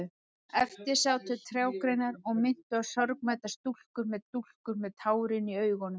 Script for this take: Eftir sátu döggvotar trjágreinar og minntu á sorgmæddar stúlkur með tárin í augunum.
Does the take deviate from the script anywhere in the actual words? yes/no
yes